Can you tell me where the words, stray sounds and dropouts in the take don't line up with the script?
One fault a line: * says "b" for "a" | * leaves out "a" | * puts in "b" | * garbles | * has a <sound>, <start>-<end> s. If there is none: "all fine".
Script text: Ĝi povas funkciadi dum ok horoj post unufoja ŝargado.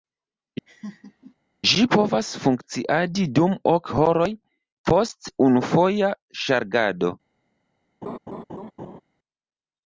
* has a laugh, 0.7-1.3 s
* has a laugh, 8.0-9.0 s